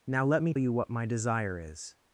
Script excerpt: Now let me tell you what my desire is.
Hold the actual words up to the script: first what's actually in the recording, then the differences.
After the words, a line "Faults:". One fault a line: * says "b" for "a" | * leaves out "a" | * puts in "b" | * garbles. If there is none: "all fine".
Now let me you what my desire is.
Faults:
* leaves out "tell"